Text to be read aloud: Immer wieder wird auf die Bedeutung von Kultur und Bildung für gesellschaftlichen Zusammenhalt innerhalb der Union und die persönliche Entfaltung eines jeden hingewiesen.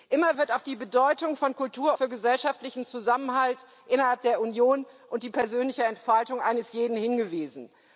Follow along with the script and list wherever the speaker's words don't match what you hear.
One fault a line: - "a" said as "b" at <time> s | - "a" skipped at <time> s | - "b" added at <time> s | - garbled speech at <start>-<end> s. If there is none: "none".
- "wieder" skipped at 0.3 s
- "und Bildung" skipped at 1.9 s